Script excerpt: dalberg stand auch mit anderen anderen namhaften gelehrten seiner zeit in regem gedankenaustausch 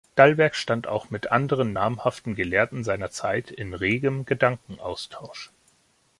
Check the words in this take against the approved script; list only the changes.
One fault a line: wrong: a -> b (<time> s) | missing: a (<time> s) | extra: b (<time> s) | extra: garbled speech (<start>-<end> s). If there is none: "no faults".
missing: anderen (1.8 s)